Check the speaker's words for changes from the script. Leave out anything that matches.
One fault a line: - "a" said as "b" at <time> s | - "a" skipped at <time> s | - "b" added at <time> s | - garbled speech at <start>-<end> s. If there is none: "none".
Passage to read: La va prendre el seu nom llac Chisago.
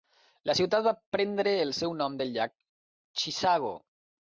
- "ciutat" added at 0.6 s
- "del" added at 2.2 s